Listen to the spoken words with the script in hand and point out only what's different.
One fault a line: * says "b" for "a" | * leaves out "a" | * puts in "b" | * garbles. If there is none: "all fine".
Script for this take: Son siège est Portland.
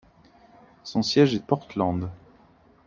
all fine